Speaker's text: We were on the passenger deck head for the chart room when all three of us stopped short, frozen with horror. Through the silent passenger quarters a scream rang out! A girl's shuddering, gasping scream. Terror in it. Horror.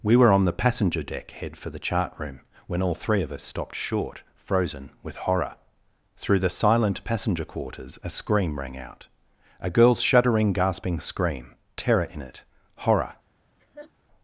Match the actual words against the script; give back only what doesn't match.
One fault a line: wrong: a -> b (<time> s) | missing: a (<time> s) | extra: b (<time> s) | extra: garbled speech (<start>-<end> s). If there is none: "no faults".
no faults